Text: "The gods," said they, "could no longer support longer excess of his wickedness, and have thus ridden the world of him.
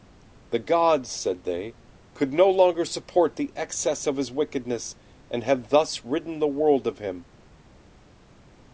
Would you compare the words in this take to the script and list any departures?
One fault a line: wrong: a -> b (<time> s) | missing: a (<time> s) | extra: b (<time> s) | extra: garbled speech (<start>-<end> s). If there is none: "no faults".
wrong: longer -> the (3.4 s)